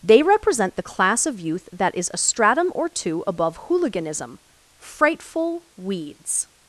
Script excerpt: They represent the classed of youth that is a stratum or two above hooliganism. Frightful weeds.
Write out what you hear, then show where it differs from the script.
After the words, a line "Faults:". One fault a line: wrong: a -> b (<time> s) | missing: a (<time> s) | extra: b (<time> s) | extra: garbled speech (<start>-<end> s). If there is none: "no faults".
They represent the class of youth that is a stratum or two above hooliganism. Frightful weeds.
Faults:
wrong: classed -> class (0.8 s)